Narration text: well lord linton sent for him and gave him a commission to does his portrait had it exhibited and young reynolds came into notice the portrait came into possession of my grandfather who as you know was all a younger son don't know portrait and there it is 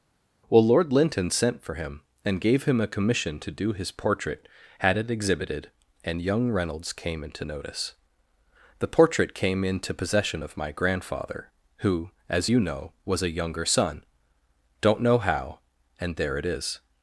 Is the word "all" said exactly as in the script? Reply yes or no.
no